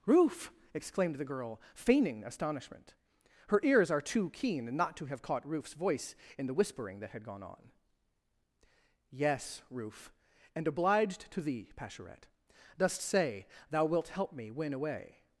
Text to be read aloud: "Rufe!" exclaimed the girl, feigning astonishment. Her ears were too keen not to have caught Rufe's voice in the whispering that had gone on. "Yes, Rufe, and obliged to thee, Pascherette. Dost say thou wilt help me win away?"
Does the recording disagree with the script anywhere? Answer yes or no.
yes